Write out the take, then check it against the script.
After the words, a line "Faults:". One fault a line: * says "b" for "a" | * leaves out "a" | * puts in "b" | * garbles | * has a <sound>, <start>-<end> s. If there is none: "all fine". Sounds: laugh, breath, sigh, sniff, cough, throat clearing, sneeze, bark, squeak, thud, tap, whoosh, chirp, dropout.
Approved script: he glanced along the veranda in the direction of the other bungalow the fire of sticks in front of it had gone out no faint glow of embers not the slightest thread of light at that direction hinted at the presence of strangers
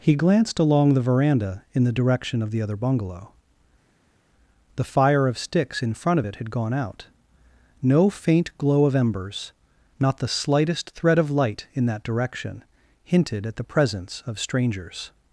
he glanced along the veranda in the direction of the other bungalow the fire of sticks in front of it had gone out no faint glow of embers not the slightest thread of light in that direction hinted at the presence of strangers
Faults:
* says "in" for "at"